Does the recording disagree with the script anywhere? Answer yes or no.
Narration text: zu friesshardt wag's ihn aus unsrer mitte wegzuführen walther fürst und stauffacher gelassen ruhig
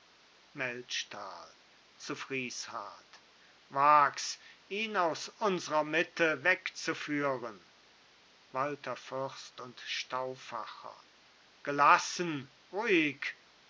no